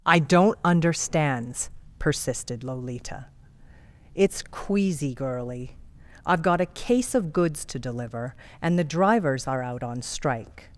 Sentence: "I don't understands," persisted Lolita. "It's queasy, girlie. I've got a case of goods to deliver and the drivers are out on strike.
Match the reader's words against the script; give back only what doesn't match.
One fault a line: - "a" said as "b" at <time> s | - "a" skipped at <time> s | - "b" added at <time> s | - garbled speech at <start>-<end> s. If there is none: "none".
none